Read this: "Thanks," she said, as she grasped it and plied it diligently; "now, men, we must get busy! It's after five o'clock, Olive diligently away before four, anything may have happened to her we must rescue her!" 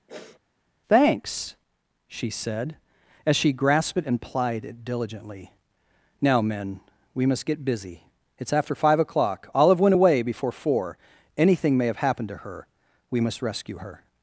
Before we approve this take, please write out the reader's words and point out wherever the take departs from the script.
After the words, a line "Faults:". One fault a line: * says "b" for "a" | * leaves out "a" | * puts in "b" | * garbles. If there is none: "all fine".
"Thanks," she said, as she grasped it and plied it diligently; "now, men, we must get busy! It's after five o'clock, Olive went away before four, anything may have happened to her we must rescue her!"
Faults:
* says "went" for "diligently"